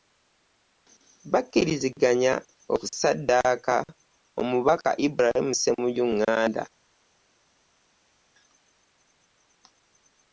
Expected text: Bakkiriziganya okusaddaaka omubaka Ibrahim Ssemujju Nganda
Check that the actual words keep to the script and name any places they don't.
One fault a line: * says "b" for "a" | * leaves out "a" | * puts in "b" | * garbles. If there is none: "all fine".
all fine